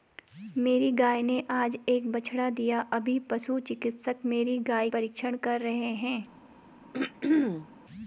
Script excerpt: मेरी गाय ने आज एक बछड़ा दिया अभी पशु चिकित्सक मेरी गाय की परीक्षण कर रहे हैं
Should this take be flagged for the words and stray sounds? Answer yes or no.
yes